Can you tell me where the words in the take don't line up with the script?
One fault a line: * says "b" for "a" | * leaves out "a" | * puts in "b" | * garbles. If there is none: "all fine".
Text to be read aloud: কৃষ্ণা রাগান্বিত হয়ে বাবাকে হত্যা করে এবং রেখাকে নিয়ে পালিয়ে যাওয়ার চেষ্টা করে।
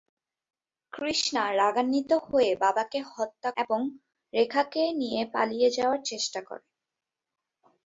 * leaves out "করে"